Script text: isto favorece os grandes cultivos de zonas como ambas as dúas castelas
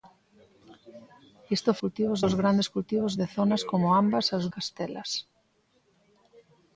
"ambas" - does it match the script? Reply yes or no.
yes